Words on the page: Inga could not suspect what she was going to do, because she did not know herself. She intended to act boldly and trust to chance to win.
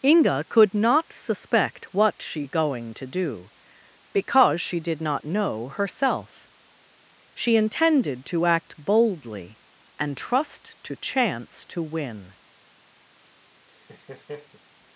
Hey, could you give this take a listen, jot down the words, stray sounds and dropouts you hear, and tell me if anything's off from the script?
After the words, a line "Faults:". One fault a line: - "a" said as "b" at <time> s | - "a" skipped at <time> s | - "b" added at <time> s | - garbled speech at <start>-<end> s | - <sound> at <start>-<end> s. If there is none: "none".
Inga could not suspect what she going to do, because she did not know herself. She intended to act boldly and trust to chance to win.
Faults:
- "was" skipped at 2.5 s
- laugh at 13.7-14.6 s